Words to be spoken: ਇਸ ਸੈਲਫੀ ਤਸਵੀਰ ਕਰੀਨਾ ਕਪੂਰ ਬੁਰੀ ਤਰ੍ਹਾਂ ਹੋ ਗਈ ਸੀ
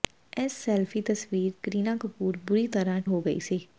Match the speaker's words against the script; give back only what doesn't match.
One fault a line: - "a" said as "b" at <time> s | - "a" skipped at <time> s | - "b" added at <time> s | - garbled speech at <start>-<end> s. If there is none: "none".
none